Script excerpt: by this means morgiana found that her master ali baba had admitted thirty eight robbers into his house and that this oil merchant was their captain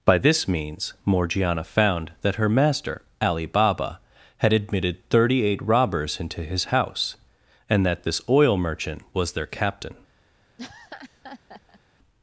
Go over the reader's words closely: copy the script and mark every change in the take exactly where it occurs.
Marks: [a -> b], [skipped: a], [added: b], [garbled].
by this means morgiana found that her master ali baba had admitted thirty eight robbers into his house and that this oil merchant was their captain